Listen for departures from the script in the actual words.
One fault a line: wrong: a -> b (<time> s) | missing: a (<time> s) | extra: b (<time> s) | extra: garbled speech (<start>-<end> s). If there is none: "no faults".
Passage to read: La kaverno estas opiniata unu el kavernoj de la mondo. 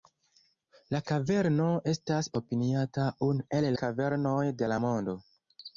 no faults